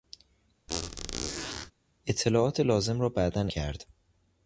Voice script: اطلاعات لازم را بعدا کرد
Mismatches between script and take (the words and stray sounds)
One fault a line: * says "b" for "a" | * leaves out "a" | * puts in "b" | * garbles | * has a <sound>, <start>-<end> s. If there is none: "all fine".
* has a squeak, 0.7-1.7 s